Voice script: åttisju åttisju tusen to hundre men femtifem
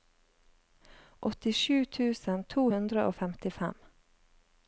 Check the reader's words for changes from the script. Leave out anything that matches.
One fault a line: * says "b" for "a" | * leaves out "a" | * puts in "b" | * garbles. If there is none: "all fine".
* leaves out "åttisju"
* says "og" for "men"